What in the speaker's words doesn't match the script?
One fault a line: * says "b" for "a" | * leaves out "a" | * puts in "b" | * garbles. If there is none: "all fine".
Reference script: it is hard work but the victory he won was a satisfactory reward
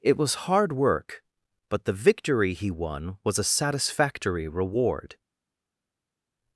* says "was" for "is"